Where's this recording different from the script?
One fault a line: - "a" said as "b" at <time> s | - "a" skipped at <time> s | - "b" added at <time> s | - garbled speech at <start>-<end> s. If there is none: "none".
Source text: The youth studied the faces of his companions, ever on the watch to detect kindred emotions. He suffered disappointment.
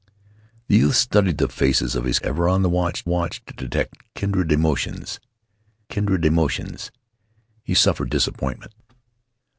- "companions" skipped at 2.2 s
- "watch" added at 3.1 s
- "kindred emotions" added at 5.9 s